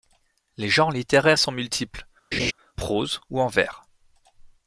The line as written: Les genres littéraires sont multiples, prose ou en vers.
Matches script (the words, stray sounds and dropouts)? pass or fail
fail